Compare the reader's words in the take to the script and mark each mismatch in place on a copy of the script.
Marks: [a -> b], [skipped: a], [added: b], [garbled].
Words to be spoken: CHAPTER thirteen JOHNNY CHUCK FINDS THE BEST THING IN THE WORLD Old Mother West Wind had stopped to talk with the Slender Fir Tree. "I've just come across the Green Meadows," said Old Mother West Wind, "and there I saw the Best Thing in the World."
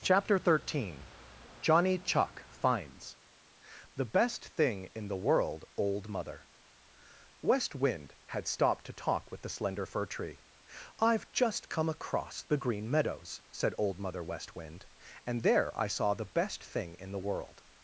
CHAPTER thirteen JOHNNY CHUCK FINDS THE BEST THING IN THE WORLD Old Mother West Wind had stopped to talk with the Slender Fir Tree. "I've just come across the Green Meadows," said Old Mother West Wind, "and there I saw the Best Thing in the World."